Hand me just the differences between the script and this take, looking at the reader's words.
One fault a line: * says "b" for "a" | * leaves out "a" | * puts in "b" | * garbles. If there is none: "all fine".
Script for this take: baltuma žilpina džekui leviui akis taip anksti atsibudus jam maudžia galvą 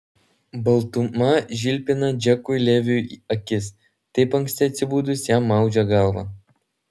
all fine